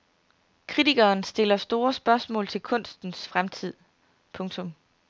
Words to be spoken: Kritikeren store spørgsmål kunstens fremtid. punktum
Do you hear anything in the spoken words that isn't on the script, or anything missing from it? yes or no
yes